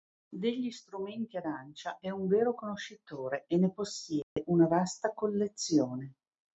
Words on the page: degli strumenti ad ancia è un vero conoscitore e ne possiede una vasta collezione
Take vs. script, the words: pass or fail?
pass